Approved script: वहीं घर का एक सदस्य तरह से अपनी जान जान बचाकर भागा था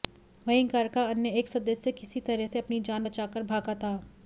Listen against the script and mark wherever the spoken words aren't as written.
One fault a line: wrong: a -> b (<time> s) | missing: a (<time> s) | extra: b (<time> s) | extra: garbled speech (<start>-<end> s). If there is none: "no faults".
extra: अन्य (1.1 s)
extra: किसी (1.9 s)
missing: जान (3.0 s)